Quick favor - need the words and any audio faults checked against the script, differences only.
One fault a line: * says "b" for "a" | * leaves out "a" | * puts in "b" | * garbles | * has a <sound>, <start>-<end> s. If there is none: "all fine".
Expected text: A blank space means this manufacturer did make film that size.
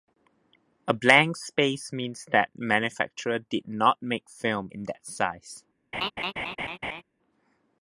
* says "that" for "this"
* puts in "not"
* puts in "in"
* has a laugh, 5.9-7.0 s